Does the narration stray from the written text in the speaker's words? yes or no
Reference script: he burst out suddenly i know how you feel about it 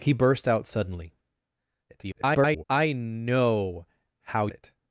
yes